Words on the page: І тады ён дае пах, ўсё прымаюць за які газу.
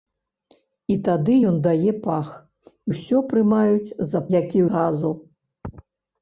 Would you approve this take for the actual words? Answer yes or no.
yes